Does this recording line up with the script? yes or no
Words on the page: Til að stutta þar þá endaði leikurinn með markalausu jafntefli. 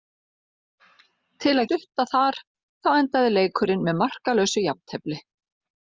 yes